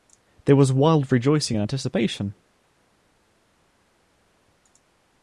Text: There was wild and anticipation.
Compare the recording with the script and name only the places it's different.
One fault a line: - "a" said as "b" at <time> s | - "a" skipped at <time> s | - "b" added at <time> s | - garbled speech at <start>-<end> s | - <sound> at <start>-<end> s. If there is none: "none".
- "rejoicing" added at 1.1 s